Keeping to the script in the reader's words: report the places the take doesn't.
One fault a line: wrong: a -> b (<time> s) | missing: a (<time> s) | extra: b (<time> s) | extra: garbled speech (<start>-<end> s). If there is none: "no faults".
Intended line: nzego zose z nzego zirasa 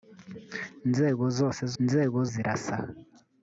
no faults